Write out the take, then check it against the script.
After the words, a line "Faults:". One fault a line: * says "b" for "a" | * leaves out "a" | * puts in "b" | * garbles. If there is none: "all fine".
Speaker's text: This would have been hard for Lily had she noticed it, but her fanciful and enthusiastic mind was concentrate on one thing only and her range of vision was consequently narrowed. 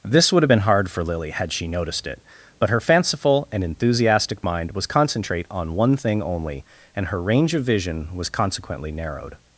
This would have been hard for Lily had she noticed it, but her fanciful and enthusiastic mind was concentrate on one thing only and her range of vision was consequently narrowed.
Faults:
all fine